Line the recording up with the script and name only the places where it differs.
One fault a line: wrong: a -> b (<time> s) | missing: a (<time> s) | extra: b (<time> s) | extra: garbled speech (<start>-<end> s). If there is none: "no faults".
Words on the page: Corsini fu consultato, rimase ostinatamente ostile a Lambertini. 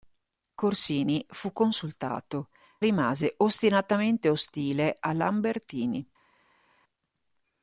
no faults